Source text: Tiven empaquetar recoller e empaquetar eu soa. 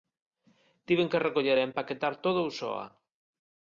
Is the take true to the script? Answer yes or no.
no